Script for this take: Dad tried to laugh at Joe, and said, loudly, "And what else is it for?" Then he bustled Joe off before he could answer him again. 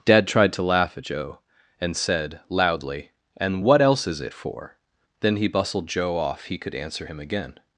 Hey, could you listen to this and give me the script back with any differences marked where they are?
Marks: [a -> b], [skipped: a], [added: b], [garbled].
Dad tried to laugh at Joe, and said, loudly, "And what else is it for?" Then he bustled Joe off [skipped: before] he could answer him again.